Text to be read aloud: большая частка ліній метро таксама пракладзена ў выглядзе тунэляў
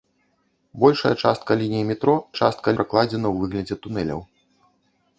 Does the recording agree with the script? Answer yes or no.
no